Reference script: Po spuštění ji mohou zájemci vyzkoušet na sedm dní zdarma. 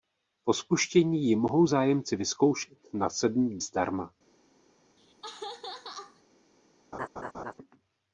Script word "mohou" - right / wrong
right